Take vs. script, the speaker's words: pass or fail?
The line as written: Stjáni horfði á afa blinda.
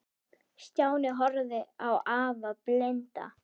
pass